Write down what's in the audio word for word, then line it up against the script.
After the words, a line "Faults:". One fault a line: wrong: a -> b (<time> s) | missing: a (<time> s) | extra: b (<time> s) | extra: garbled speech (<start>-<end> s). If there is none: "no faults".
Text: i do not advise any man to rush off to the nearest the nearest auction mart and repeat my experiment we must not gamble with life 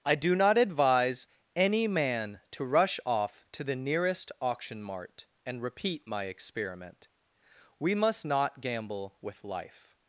i do not advise any man to rush off to the nearest auction mart and repeat my experiment we must not gamble with life
Faults:
missing: the nearest (4.3 s)